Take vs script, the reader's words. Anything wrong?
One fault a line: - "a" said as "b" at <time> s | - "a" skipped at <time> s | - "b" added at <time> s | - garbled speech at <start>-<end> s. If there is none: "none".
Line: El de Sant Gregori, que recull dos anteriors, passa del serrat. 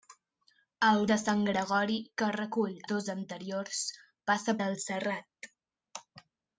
none